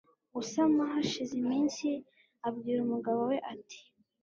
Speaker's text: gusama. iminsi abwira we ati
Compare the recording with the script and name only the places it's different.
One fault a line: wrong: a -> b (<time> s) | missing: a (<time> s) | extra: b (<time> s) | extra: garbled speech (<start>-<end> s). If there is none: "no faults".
extra: hashize (0.9 s)
extra: umugabo (2.8 s)